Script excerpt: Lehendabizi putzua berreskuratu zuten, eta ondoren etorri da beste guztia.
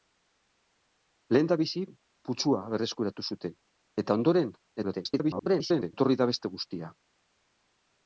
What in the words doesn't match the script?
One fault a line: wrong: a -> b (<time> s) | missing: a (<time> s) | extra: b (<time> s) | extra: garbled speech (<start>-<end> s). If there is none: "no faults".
extra: garbled speech (4.8-5.9 s)